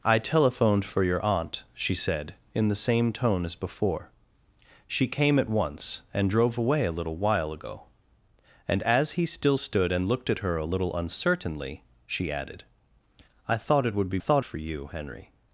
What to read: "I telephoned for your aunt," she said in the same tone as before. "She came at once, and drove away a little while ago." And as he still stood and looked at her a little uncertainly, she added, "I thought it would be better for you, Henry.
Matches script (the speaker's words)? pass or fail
fail